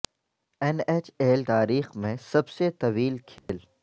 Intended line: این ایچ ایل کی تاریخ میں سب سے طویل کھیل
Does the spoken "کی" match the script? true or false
false